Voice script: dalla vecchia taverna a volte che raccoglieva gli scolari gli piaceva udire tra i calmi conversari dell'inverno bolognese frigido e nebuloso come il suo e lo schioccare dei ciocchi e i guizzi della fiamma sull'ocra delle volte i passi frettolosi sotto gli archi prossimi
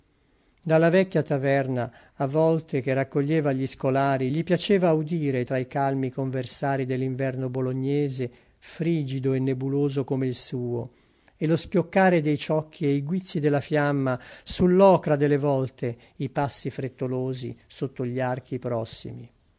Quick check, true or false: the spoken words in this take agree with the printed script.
true